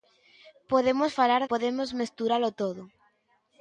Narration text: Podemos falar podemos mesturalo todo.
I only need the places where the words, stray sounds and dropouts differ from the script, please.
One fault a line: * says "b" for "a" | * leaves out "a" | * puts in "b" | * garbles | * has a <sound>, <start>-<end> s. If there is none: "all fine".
all fine